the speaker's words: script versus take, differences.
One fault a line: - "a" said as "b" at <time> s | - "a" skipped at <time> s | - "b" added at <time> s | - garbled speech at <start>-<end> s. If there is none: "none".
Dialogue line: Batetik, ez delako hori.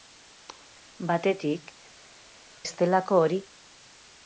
none